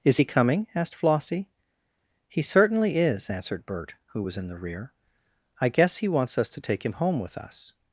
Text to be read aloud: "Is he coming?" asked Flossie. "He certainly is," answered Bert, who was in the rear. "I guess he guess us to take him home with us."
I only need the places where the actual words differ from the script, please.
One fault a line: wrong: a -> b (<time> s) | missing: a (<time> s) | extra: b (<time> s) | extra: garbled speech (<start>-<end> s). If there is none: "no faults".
wrong: guess -> wants (6.1 s)